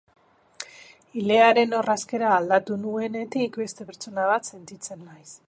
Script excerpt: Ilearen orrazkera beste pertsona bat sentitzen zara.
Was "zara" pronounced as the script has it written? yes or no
no